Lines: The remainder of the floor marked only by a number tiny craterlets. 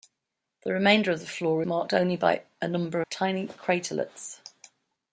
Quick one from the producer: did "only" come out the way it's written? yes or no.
yes